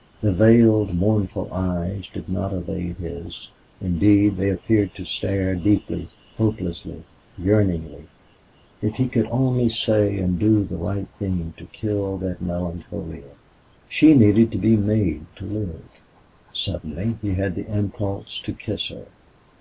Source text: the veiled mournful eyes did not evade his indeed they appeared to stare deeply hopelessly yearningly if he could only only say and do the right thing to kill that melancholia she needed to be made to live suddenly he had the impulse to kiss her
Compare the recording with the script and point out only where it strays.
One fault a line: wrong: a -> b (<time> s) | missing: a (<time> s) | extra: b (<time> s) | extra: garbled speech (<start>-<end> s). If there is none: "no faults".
missing: only (9.7 s)